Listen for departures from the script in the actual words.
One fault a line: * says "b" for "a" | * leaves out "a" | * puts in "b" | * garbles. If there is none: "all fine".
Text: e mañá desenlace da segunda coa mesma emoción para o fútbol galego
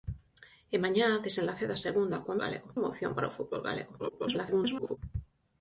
* says "galego" for "mesma"
* garbles